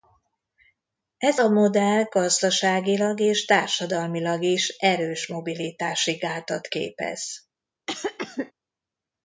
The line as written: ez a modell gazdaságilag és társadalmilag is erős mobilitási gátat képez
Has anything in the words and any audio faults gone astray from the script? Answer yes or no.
yes